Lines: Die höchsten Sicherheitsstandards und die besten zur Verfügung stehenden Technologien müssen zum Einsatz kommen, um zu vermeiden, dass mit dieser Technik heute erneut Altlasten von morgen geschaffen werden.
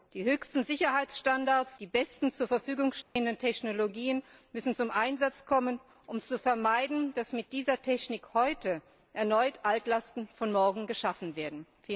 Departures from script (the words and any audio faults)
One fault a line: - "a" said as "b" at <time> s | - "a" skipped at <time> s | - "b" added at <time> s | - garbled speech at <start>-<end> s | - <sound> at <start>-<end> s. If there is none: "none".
- "und" skipped at 1.8 s
- dropout at 3.0-3.2 s